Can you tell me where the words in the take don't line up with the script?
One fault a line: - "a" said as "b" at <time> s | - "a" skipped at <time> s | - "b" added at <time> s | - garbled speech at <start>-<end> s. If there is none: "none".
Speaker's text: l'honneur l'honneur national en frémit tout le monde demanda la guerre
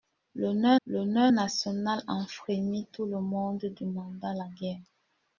none